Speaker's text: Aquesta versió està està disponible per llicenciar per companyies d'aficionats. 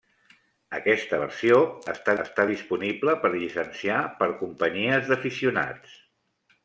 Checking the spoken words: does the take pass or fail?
pass